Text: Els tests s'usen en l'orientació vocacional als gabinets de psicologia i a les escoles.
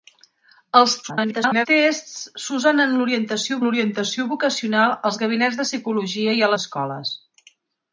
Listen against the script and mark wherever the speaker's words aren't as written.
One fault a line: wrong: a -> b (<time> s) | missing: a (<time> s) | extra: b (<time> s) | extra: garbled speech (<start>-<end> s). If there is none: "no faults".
extra: garbled speech (1.0-1.7 s)
extra: l'orientació (3.6 s)
missing: les (6.5 s)